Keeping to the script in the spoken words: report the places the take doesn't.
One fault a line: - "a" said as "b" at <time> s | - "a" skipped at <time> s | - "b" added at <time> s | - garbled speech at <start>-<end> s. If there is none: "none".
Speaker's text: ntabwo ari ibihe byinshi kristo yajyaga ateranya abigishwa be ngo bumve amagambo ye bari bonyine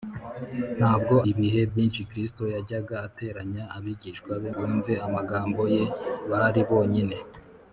- "ari" skipped at 1.1 s
- "ngo" skipped at 4.5 s